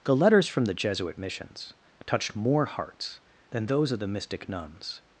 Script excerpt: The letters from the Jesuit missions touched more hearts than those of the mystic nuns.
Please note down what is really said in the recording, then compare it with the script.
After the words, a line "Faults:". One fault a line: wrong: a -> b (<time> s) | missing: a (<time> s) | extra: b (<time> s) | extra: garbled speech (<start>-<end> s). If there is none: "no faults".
The letters from the Jesuit missions touched more hearts than those of the mystic nuns.
Faults:
no faults